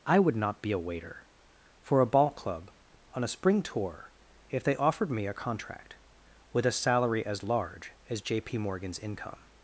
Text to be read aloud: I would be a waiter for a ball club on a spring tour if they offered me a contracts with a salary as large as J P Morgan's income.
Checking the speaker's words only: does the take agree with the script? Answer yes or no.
no